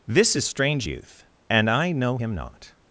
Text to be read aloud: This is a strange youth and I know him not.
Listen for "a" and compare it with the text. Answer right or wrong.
wrong